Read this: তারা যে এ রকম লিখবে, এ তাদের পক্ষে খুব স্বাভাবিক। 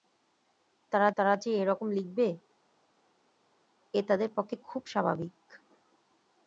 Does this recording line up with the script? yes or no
no